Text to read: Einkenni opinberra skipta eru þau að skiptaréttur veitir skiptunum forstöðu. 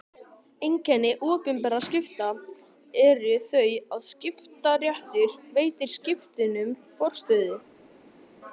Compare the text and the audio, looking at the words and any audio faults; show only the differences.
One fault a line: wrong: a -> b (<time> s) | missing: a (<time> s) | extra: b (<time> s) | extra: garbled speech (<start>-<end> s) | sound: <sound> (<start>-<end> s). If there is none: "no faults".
no faults